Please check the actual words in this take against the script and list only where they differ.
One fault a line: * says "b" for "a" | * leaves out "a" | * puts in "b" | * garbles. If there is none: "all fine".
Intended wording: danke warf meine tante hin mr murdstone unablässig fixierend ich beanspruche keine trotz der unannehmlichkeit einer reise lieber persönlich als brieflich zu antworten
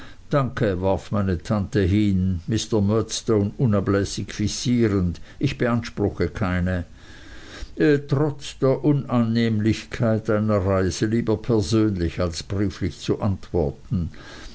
all fine